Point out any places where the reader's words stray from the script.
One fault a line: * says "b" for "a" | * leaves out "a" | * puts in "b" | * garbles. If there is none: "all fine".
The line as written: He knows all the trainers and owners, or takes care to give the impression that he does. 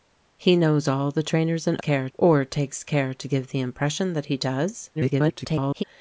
* says "care" for "owners"
* garbles